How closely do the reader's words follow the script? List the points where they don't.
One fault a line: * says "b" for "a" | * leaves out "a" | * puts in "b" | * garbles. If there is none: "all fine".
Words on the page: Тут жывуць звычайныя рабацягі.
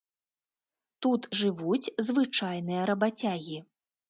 all fine